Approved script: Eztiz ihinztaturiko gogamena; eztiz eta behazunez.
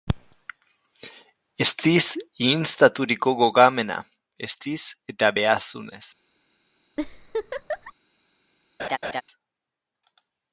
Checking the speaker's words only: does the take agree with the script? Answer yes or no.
yes